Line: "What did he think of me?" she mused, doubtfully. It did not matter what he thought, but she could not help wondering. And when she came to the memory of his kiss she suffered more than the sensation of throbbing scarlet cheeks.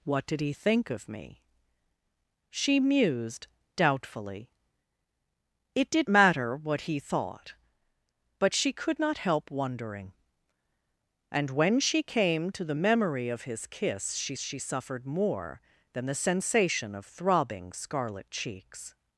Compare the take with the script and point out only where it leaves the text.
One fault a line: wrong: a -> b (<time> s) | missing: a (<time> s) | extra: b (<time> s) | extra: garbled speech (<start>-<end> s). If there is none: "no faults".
missing: not (6.1 s)
extra: she (14.4 s)